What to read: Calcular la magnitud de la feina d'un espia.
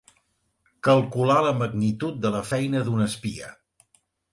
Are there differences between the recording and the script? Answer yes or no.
no